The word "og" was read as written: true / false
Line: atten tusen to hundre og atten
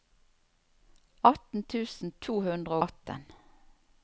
false